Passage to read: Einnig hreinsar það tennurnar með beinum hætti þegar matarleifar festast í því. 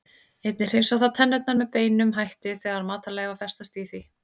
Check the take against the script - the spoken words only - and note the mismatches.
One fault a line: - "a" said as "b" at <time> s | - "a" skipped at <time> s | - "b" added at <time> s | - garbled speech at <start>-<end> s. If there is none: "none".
none